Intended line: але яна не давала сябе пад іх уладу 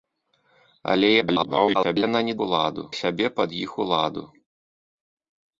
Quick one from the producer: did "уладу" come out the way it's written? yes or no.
yes